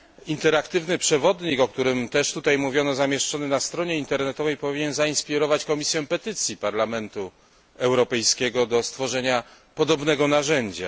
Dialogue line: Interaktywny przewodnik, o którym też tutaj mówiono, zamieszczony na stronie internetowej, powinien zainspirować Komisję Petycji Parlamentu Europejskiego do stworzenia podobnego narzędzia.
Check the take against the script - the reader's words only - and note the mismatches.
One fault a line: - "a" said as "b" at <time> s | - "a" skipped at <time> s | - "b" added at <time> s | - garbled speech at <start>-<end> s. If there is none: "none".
none